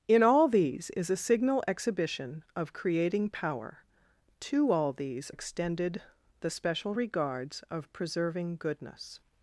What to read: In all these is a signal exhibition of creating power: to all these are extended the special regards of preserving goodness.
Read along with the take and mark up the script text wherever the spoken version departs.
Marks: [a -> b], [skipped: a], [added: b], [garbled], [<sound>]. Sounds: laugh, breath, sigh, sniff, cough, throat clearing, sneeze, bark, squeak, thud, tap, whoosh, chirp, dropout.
In all these is a signal exhibition of creating power: to all these [skipped: are] extended the special regards of preserving goodness.